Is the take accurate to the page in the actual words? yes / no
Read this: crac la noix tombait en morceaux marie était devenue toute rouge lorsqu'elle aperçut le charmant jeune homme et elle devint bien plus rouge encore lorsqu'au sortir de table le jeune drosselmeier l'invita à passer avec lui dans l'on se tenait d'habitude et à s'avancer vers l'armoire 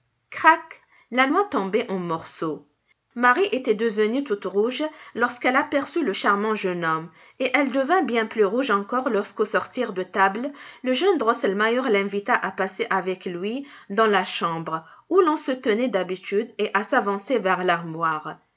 no